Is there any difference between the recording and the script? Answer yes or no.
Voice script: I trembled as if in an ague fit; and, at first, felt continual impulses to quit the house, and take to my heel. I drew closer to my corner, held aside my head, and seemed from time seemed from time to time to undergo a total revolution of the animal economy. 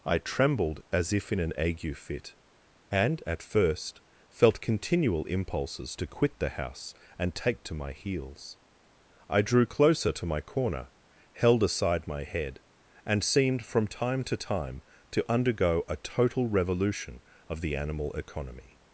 yes